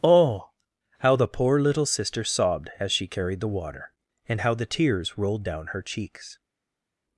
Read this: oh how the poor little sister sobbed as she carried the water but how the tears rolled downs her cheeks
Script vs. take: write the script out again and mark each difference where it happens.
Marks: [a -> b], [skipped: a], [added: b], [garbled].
oh how the poor little sister sobbed as she carried the water [but -> and] how the tears rolled [downs -> down] her cheeks